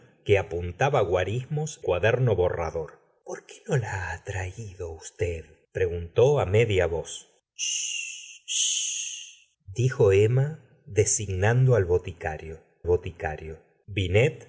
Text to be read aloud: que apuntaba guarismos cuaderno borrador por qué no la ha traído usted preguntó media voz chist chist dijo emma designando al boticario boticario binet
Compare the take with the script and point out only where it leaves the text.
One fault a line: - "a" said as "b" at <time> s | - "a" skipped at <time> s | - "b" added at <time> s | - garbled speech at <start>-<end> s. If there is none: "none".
none